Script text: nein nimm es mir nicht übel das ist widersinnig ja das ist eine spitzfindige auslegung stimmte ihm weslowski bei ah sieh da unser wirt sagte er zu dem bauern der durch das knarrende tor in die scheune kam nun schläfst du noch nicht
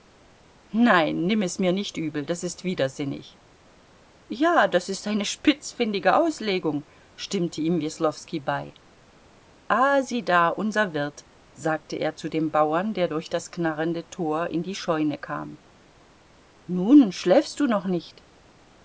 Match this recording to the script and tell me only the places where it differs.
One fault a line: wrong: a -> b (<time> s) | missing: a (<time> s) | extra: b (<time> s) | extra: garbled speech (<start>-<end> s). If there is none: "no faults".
no faults